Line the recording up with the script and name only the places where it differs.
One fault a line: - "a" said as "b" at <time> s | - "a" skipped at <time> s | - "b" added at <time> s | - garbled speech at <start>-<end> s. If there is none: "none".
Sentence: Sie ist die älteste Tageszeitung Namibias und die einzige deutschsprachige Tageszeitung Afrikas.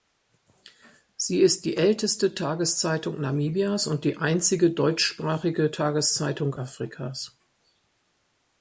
none